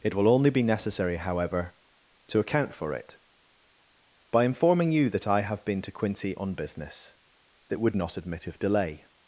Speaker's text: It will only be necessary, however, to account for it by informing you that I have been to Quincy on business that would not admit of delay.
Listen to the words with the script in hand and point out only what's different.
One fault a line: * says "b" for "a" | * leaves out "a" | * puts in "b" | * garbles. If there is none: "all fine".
all fine